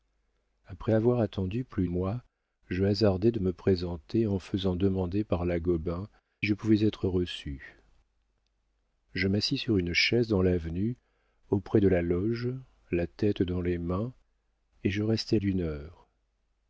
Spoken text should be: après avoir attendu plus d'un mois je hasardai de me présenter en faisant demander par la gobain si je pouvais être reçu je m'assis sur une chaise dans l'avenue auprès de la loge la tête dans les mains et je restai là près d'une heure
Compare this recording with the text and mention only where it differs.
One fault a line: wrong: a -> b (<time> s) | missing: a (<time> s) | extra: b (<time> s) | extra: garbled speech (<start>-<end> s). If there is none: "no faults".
missing: d'un (1.9 s)
missing: si (6.1 s)
missing: là près (15.4 s)